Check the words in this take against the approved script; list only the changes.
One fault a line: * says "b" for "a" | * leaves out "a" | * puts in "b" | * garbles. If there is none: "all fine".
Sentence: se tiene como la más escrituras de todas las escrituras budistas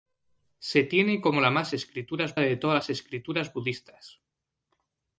all fine